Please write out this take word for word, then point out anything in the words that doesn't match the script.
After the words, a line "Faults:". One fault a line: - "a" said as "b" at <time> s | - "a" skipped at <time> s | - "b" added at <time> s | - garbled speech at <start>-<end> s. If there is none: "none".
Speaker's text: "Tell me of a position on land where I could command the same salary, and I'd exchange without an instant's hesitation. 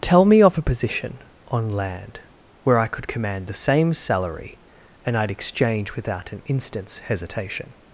"Tell me of a position on land where I could command the same salary, and I'd exchange without an instant's hesitation.
Faults:
none